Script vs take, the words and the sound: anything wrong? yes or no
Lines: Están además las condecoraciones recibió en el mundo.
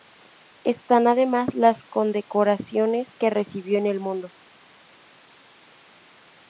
yes